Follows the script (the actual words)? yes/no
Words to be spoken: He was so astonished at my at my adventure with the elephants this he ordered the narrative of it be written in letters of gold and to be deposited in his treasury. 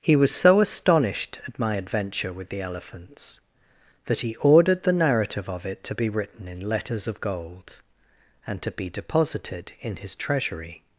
no